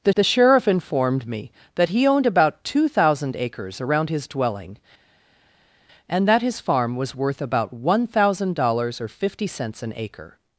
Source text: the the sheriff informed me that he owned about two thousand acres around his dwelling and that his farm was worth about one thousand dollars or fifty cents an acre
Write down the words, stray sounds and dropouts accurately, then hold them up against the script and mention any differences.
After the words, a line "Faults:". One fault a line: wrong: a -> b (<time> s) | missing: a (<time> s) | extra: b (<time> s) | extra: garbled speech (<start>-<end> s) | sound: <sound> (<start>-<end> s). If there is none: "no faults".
the the sheriff informed me that he owned about two thousand acres around his dwelling and that his farm was worth about one thousand dollars or fifty cents an acre
Faults:
no faults